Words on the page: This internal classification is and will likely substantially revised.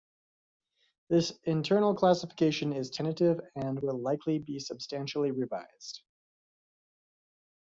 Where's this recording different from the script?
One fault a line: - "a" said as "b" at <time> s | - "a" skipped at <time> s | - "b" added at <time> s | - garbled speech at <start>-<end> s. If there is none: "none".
- "tentative" added at 2.9 s
- "be" added at 4.4 s